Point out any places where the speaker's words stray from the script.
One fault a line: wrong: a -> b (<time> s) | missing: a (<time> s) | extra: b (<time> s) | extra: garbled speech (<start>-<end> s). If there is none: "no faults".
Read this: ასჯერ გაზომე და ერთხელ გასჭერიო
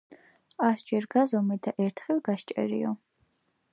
no faults